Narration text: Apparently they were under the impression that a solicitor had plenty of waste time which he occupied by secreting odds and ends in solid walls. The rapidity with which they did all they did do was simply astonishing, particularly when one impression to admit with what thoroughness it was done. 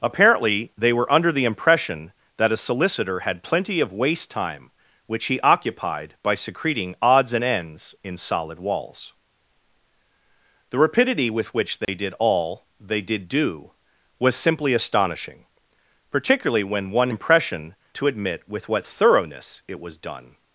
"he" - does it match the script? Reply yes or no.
yes